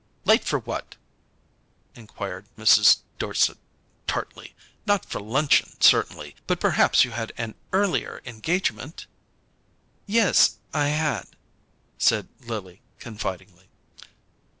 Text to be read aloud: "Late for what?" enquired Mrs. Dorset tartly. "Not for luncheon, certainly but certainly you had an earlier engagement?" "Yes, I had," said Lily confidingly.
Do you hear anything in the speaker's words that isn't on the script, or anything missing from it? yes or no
yes